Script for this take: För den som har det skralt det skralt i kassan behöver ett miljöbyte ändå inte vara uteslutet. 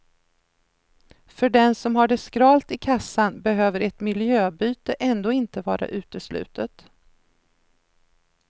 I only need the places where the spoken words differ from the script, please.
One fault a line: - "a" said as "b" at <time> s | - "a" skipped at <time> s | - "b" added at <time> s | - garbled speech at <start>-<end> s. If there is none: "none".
- "det skralt" skipped at 2.7 s